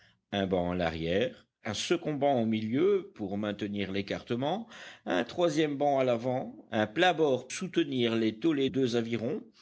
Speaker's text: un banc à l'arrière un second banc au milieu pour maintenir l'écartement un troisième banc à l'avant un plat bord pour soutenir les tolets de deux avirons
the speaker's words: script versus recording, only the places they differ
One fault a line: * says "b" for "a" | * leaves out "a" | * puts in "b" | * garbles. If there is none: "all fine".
* leaves out "pour"
* leaves out "de"